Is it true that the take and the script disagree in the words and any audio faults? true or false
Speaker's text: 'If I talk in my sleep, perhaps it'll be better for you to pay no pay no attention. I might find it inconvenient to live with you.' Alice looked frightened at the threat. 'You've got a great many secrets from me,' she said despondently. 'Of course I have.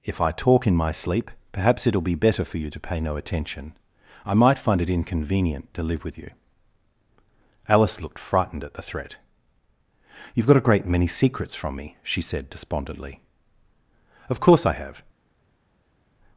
true